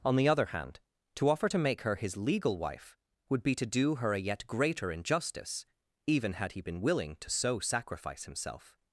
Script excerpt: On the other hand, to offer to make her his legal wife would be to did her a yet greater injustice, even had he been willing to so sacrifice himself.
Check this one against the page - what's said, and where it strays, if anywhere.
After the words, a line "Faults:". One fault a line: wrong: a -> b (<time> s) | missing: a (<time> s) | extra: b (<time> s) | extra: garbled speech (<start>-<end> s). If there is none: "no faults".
On the other hand, to offer to make her his legal wife would be to do her a yet greater injustice, even had he been willing to so sacrifice himself.
Faults:
wrong: did -> do (3.7 s)